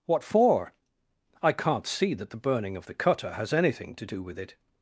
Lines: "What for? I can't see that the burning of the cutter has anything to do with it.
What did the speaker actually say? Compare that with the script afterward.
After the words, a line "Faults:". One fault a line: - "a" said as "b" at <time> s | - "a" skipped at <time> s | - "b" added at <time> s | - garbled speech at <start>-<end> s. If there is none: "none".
"What for? I can't see that the burning of the cutter has anything to do with it.
Faults:
none